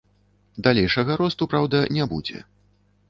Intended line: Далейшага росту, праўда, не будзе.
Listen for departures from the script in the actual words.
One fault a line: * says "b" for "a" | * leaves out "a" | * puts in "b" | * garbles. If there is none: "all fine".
all fine